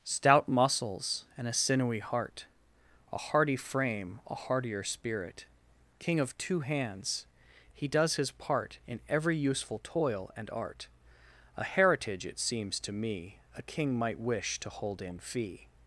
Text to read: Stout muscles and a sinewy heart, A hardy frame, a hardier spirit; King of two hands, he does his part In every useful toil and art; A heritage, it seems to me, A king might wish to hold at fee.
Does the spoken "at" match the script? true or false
false